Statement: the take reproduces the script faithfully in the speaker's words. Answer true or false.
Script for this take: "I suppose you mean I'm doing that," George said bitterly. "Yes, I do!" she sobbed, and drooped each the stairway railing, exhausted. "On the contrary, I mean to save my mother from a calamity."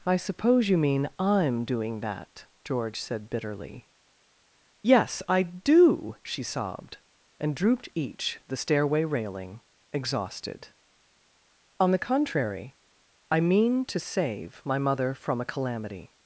true